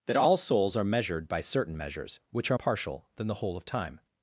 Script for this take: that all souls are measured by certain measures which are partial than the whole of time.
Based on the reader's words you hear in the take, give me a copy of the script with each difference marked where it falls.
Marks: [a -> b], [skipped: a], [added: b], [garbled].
that all souls are measured by certain measures which are partial than the whole of time.